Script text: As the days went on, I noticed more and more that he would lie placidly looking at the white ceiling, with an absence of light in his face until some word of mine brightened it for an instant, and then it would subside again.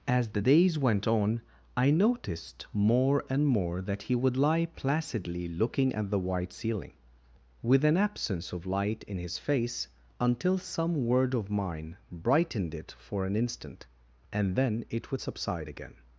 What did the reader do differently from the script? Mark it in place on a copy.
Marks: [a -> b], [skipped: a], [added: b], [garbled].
As the days went on, I noticed more and more that he would lie placidly looking at the white ceiling, with an absence of light in his face until some word of mine brightened it for an instant, and then it would subside again.